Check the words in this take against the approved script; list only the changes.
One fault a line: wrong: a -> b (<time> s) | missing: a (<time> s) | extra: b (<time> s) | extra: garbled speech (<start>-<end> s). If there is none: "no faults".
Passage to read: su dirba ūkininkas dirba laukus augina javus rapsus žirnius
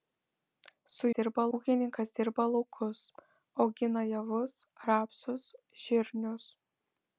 no faults